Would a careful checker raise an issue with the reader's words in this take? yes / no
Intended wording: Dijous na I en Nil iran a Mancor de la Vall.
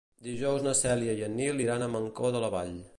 yes